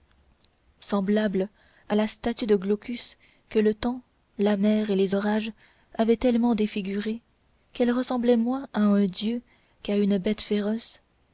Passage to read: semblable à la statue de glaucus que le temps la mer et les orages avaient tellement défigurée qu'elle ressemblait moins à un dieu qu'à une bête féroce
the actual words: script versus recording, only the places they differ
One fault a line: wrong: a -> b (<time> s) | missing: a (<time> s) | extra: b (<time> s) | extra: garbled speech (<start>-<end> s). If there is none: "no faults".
no faults